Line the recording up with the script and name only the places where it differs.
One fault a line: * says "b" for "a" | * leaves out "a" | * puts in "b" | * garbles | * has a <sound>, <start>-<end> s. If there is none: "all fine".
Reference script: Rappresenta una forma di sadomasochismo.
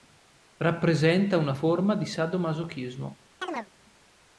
* has a chirp, 3.4-3.7 s